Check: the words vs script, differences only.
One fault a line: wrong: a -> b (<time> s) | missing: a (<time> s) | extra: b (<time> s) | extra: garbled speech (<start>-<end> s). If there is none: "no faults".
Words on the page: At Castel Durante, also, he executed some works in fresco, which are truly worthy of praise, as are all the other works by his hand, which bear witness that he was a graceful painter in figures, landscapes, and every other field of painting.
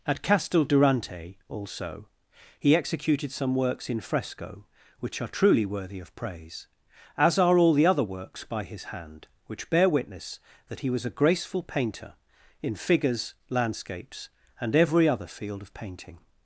no faults